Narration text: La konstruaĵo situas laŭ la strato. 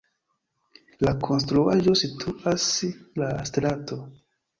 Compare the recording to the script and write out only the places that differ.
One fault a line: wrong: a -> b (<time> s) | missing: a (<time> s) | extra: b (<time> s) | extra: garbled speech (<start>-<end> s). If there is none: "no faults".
missing: laŭ (2.7 s)